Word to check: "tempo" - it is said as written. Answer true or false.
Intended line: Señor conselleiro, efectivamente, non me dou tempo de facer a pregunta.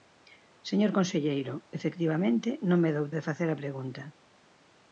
false